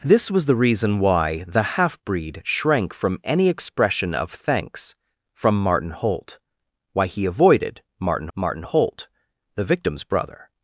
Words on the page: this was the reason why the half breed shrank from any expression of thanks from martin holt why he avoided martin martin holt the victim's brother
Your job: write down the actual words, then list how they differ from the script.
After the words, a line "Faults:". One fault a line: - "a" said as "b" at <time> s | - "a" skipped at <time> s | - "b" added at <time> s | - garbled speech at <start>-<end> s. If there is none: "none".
this was the reason why the half breed shrank from any expression of thanks from martin holt why he avoided martin martin holt the victim's brother
Faults:
none